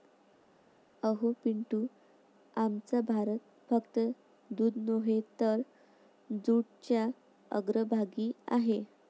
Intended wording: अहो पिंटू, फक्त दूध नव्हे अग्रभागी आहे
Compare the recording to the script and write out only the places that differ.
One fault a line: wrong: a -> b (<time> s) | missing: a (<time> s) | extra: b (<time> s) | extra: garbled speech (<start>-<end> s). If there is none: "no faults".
extra: आमचा भारत (2.6 s)
extra: तर जूटच्या (5.4 s)